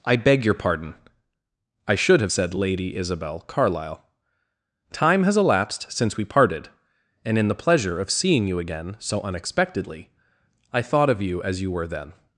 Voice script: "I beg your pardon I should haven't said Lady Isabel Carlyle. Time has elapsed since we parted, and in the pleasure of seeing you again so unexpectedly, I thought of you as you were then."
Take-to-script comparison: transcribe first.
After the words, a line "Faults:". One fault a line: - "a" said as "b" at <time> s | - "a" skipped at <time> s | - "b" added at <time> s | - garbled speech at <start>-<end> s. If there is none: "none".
"I beg your pardon I should have said Lady Isabel Carlyle. Time has elapsed since we parted, and in the pleasure of seeing you again so unexpectedly, I thought of you as you were then."
Faults:
- "haven't" said as "have" at 2.2 s